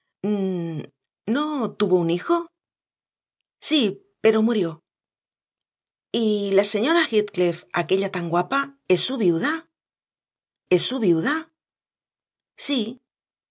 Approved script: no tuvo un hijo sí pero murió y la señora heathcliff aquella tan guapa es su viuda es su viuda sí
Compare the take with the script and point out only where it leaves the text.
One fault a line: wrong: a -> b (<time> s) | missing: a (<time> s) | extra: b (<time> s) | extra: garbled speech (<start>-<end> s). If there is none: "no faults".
no faults